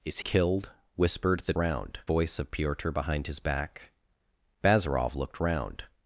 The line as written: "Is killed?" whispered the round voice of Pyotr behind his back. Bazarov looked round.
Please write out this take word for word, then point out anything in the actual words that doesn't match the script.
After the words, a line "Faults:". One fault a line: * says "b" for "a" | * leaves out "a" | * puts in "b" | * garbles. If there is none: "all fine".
"Is killed?" whispered the round voice of Pyotr behind his back. Bazarov looked round.
Faults:
all fine